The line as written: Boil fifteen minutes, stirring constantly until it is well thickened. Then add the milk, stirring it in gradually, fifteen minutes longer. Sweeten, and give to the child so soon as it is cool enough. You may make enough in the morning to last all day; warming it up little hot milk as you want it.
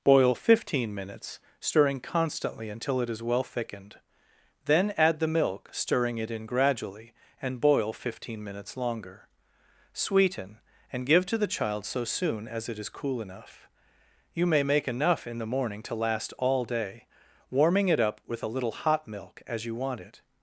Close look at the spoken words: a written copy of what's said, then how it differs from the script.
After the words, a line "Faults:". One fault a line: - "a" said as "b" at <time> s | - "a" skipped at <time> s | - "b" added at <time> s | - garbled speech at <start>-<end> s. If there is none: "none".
Boil fifteen minutes, stirring constantly until it is well thickened. Then add the milk, stirring it in gradually, and boil fifteen minutes longer. Sweeten, and give to the child so soon as it is cool enough. You may make enough in the morning to last all day; warming it up with a little hot milk as you want it.
Faults:
- "and boil" added at 7.4 s
- "with a" added at 18.2 s